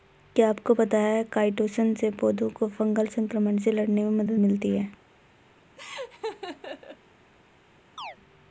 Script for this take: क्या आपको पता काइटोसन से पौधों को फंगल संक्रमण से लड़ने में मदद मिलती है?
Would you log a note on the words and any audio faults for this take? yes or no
yes